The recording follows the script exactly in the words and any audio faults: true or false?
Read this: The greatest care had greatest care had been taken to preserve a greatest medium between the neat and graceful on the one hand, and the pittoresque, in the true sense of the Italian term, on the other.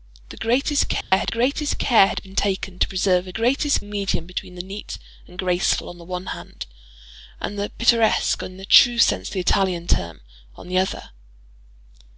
false